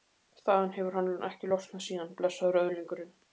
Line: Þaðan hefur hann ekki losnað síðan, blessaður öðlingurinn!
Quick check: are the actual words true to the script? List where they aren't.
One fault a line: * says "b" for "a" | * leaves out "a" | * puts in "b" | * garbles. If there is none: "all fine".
all fine